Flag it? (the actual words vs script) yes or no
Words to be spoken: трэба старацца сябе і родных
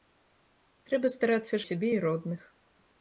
no